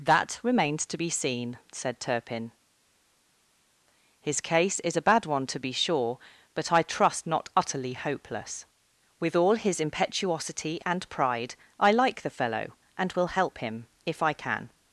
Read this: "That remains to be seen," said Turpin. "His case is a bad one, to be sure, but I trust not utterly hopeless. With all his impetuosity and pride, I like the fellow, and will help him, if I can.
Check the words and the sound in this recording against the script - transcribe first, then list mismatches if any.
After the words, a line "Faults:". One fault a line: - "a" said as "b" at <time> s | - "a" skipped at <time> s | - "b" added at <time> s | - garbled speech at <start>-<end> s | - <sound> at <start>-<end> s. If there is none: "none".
"That remains to be seen," said Turpin. "His case is a bad one, to be sure, but I trust not utterly hopeless. With all his impetuosity and pride, I like the fellow, and will help him, if I can.
Faults:
none